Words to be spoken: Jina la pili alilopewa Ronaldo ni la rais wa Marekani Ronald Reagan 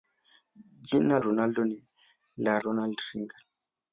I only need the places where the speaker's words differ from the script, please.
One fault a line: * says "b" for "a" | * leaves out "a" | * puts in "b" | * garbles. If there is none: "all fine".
* leaves out "la pili alilopewa"
* leaves out "rais wa Marekani"